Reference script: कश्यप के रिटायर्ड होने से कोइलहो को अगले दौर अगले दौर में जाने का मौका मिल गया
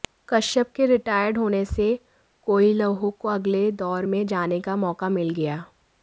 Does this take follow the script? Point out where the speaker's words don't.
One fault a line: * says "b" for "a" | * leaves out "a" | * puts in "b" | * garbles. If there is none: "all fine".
* leaves out "अगले दौर"